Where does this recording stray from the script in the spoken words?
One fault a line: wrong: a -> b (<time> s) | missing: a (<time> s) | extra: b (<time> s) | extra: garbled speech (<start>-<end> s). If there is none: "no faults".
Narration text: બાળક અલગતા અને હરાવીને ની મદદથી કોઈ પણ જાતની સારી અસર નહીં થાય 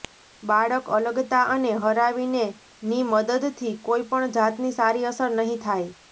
no faults